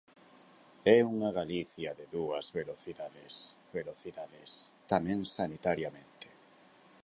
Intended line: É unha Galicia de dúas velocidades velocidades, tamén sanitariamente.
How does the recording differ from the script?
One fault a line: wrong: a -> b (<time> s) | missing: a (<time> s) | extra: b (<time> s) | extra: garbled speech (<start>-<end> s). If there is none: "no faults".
no faults